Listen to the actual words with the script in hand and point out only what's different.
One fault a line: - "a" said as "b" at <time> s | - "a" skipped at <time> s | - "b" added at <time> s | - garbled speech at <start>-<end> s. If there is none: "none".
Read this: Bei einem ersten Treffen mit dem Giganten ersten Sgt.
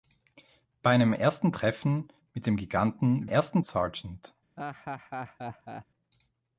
none